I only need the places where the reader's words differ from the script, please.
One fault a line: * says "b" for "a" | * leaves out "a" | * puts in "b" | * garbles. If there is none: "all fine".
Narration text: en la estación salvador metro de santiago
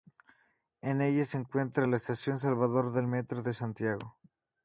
* puts in "ella se encuentra"
* puts in "del"